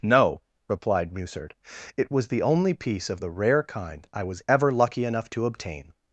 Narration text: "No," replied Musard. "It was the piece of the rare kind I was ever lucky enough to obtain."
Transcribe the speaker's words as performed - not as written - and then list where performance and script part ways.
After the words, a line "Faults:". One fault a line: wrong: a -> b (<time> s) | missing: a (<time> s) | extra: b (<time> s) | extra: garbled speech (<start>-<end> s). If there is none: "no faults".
"No," replied Musard. "It was the only piece of the rare kind I was ever lucky enough to obtain."
Faults:
extra: only (2.4 s)